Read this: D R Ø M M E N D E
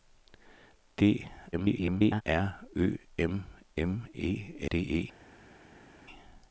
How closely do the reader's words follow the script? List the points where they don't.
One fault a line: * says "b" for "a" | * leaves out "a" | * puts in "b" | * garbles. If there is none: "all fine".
* garbles
* leaves out "N"